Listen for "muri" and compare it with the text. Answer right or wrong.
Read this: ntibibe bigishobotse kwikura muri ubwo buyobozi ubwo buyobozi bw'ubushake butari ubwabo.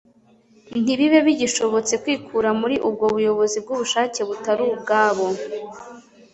right